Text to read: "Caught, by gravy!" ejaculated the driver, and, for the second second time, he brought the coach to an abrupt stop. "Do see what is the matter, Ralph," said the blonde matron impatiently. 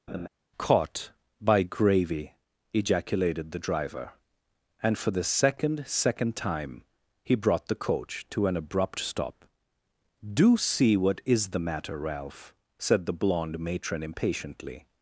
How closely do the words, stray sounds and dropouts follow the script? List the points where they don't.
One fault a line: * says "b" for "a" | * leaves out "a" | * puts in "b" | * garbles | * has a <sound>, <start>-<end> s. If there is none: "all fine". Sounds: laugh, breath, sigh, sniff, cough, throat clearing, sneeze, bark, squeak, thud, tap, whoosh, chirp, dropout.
* has a laugh, 0.1-0.3 s